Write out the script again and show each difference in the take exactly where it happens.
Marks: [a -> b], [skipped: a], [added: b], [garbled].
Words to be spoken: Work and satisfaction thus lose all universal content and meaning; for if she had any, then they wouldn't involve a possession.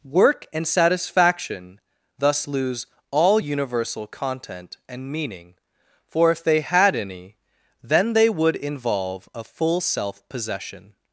Work and satisfaction thus lose all universal content and meaning; for if [she -> they] had any, then they [wouldn't -> would] involve a [added: full self] possession.